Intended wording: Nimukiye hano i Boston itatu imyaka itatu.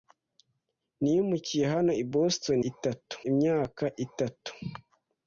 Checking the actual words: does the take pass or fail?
pass